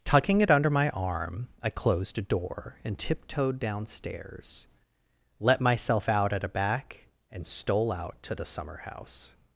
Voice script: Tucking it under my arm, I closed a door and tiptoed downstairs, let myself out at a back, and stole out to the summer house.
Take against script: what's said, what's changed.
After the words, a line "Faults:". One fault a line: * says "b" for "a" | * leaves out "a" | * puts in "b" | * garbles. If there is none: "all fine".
Tucking it under my arm, I closed a door and tiptoed downstairs, let myself out at a back, and stole out to the summer house.
Faults:
all fine